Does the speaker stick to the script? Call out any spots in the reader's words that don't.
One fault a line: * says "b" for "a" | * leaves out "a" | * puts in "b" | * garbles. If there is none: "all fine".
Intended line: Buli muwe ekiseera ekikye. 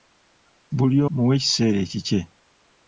all fine